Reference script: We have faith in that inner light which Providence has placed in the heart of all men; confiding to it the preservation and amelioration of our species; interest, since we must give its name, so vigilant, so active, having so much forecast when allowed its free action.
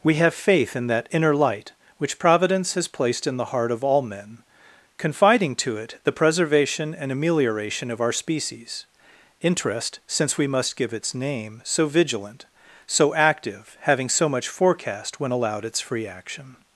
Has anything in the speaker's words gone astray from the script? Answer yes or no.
no